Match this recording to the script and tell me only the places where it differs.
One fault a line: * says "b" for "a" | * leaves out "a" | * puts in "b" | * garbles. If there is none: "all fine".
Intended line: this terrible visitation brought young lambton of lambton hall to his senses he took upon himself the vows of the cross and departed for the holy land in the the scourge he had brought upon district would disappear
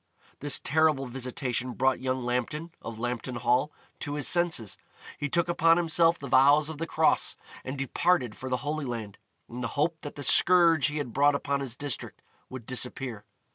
* puts in "hope that"
* puts in "his"